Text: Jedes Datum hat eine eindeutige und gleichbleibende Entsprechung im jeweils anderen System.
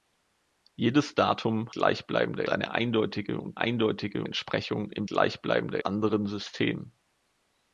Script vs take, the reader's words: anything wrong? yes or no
yes